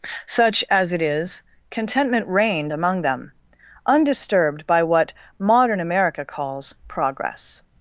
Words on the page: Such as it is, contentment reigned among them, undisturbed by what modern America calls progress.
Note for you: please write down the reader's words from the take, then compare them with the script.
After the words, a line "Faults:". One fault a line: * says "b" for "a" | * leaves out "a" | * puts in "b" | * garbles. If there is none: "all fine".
Such as it is, contentment reigned among them, undisturbed by what modern America calls progress.
Faults:
all fine